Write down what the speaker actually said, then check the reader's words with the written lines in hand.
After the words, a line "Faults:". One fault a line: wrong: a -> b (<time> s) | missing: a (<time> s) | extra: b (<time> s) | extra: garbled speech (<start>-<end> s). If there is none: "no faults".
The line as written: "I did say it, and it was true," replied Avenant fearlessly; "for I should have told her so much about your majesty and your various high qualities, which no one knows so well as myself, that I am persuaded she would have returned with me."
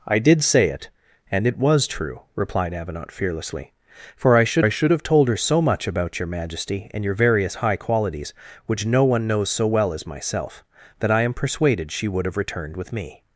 "I did say it, and it was true," replied Avenant fearlessly; "for I should I should have told her so much about your majesty and your various high qualities, which no one knows so well as myself, that I am persuaded she would have returned with me."
Faults:
extra: I should (4.6 s)